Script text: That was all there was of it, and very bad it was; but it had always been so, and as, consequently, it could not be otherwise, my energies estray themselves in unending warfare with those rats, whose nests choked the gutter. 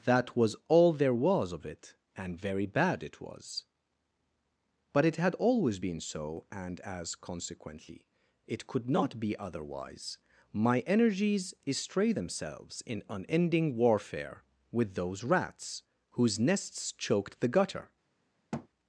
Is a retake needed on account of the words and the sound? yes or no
yes